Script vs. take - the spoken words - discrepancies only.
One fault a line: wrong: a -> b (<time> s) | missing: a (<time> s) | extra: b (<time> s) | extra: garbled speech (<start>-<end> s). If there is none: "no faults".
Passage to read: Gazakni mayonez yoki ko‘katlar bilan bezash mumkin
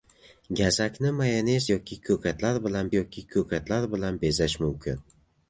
extra: yoki ko‘katlar bilan (3.0 s)